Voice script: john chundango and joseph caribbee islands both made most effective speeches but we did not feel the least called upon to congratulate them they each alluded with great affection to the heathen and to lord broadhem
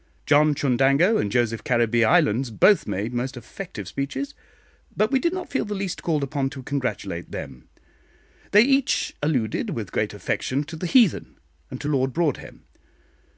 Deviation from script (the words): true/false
false